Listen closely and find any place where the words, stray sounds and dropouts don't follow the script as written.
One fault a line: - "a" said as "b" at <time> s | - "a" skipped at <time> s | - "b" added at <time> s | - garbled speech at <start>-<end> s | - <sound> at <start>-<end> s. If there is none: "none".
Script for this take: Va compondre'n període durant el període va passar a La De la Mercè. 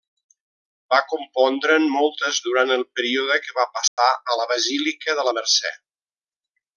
- "període" said as "moltes" at 2.0 s
- "que" added at 3.5 s
- dropout at 3.9-4.0 s
- "Basílica" added at 4.5 s